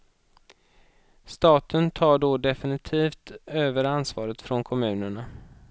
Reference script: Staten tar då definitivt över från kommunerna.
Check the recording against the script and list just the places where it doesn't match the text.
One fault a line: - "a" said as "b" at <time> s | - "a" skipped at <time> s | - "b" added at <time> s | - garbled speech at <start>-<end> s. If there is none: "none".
- "ansvaret" added at 3.8 s